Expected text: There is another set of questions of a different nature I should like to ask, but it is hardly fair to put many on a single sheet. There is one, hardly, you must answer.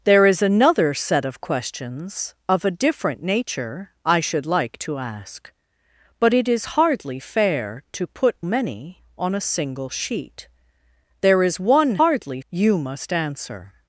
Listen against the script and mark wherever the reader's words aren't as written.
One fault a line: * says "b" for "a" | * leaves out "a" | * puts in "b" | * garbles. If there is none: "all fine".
all fine